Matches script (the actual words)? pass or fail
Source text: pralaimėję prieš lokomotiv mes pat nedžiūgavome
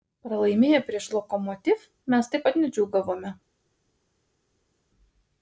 fail